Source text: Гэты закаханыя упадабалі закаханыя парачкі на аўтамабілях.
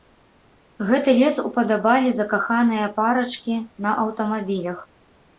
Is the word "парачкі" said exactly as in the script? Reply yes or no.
yes